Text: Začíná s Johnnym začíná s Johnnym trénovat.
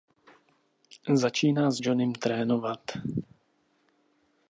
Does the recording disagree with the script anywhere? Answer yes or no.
yes